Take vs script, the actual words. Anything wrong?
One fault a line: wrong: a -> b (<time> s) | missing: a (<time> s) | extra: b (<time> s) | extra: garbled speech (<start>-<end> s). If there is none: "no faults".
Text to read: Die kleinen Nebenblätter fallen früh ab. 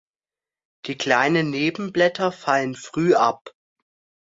no faults